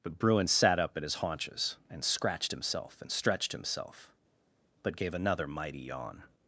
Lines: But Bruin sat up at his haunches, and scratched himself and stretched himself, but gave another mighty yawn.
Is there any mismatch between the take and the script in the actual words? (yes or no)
no